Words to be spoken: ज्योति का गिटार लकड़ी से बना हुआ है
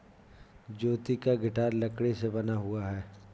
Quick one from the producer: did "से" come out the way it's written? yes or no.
yes